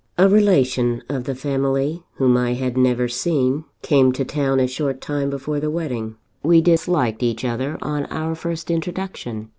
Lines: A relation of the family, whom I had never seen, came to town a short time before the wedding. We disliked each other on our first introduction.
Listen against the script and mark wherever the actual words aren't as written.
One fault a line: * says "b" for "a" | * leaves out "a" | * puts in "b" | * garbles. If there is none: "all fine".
all fine